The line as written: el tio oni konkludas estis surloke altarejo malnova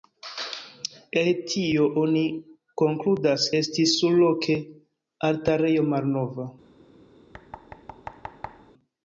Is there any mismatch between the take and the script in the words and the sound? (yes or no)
yes